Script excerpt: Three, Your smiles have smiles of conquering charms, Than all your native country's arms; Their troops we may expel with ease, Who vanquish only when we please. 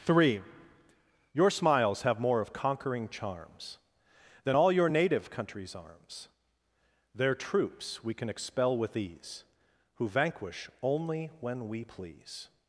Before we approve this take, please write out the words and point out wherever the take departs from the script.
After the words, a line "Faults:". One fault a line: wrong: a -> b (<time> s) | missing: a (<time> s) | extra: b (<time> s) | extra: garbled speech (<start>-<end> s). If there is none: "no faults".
Three, Your smiles have more of conquering charms, Than all your native country's arms; Their troops we can expel with ease, Who vanquish only when we please.
Faults:
wrong: smiles -> more (2.2 s)
wrong: may -> can (8.1 s)